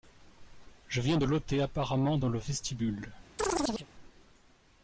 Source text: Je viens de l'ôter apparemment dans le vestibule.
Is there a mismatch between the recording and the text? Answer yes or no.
no